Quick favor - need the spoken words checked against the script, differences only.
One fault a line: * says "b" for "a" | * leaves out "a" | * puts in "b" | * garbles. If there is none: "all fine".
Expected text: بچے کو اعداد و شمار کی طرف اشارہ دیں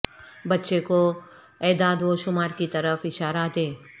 all fine